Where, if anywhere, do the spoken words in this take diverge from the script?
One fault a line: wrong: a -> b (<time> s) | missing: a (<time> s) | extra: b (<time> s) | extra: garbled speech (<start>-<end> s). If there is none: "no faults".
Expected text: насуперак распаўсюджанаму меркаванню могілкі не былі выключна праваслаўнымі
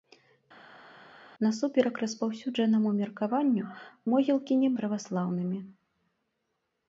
missing: былі выключна (4.7 s)